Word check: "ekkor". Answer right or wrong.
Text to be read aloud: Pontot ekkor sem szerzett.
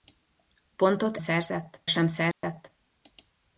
wrong